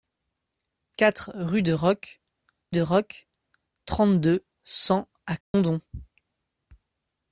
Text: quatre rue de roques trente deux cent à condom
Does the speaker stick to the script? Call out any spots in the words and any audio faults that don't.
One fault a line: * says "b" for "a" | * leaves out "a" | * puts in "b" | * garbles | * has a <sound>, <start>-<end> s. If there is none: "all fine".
* puts in "de roques"
* has a dropout, 5.4-5.5 s